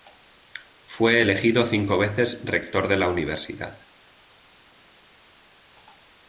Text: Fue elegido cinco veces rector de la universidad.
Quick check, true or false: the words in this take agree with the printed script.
true